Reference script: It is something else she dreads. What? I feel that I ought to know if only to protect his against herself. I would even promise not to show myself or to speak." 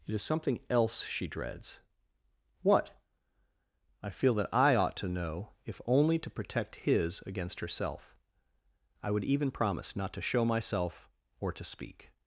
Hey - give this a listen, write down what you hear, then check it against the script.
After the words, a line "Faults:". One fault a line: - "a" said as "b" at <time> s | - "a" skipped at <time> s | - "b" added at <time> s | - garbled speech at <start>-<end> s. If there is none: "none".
It is something else she dreads. What? I feel that I ought to know if only to protect his against herself. I would even promise not to show myself or to speak."
Faults:
none